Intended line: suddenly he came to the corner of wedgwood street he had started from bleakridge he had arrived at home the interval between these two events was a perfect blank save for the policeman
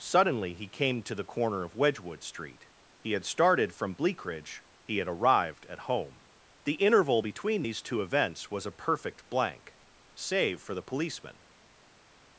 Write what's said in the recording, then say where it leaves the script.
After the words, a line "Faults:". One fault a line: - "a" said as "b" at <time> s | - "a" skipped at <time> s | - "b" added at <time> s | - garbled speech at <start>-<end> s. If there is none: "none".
suddenly he came to the corner of wedgwood street he had started from bleakridge he had arrived at home the interval between these two events was a perfect blank save for the policeman
Faults:
none